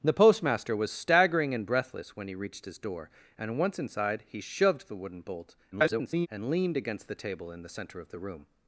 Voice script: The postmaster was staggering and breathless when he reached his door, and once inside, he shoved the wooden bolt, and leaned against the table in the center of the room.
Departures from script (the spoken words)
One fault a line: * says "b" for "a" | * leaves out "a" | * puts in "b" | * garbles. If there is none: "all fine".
* garbles